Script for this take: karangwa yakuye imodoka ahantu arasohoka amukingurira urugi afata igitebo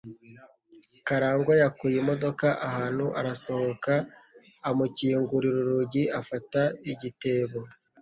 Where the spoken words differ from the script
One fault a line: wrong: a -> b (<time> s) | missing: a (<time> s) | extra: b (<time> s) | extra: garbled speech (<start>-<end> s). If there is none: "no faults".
no faults